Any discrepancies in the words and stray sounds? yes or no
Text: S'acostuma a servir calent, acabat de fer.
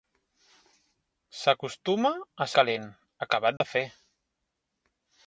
yes